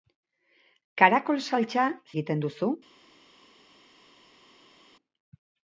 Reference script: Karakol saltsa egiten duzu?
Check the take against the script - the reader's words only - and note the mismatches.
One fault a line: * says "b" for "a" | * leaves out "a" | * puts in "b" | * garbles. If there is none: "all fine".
all fine